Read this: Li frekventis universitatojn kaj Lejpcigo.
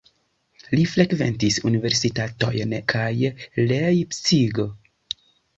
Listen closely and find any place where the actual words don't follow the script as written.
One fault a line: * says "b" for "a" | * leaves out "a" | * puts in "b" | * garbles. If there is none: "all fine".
all fine